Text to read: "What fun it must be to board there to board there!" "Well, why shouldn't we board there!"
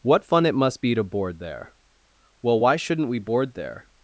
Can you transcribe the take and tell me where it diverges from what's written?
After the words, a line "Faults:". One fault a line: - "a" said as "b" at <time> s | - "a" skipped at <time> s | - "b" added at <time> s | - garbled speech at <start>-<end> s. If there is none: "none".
"What fun it must be to board there!" "Well, why shouldn't we board there!"
Faults:
- "to board there" skipped at 1.7 s